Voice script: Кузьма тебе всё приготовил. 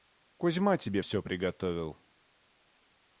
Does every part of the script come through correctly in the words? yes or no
yes